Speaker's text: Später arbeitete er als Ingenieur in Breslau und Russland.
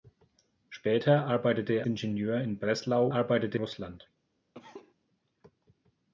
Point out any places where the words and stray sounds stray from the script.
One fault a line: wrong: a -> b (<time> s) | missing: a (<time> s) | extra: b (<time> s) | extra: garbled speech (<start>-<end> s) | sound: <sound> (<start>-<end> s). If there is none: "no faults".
missing: als (1.9 s)
wrong: und -> arbeitete (3.1 s)
sound: cough (4.5-4.9 s)